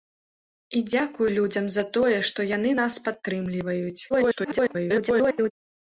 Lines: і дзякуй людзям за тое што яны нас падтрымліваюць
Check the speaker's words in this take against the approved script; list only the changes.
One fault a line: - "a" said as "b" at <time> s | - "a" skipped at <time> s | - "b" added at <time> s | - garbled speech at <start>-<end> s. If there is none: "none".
- garbled speech at 4.1-5.5 s